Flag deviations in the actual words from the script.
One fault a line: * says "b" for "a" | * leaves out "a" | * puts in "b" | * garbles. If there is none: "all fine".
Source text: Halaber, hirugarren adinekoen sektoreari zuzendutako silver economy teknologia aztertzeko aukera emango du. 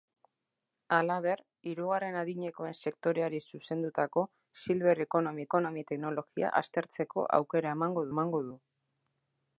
* puts in "economy"
* puts in "emango"